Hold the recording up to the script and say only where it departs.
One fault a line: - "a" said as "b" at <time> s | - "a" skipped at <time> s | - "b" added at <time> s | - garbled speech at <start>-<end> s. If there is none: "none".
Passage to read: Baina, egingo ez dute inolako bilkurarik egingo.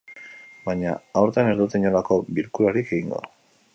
- "egingo" said as "aurten" at 1.2 s